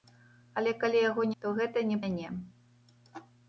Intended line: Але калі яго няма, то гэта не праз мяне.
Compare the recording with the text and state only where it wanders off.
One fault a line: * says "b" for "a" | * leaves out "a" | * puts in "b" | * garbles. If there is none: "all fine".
* leaves out "няма"
* leaves out "праз"